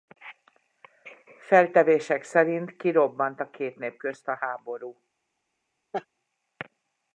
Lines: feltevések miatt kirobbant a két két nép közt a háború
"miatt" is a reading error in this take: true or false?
true